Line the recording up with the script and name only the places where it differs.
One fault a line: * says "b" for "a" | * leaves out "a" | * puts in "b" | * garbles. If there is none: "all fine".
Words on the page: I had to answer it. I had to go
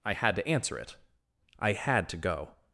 all fine